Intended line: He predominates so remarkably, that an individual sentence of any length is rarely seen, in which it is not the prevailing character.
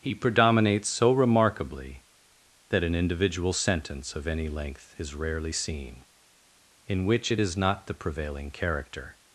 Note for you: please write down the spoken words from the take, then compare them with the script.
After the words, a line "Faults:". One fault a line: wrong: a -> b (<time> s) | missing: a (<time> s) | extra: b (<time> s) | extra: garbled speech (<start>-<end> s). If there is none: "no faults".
He predominates so remarkably, that an individual sentence of any length is rarely seen, in which it is not the prevailing character.
Faults:
no faults